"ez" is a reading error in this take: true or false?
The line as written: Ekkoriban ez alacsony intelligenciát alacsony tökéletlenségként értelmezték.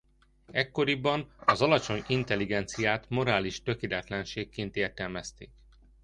true